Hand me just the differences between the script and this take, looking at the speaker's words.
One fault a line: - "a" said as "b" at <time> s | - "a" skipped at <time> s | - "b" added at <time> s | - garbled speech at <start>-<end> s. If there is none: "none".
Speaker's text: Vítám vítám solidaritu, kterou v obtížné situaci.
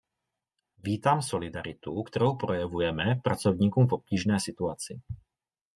- "vítám" skipped at 1.2 s
- "projevujeme pracovníkům" added at 2.4 s